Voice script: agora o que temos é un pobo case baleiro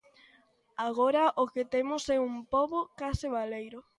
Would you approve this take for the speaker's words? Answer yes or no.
yes